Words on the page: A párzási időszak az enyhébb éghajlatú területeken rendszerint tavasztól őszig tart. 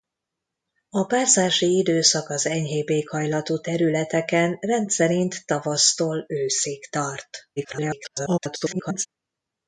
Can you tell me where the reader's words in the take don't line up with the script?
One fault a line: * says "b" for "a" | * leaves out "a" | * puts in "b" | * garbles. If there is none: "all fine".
* garbles